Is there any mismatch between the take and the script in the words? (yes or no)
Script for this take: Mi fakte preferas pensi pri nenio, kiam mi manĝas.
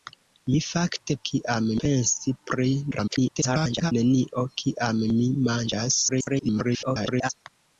yes